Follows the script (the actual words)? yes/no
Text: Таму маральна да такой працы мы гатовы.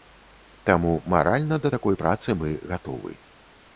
yes